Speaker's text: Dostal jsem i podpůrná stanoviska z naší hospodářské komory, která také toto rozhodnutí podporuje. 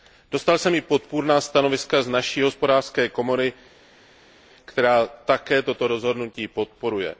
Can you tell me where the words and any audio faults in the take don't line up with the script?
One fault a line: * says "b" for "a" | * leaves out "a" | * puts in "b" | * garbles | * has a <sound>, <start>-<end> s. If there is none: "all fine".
all fine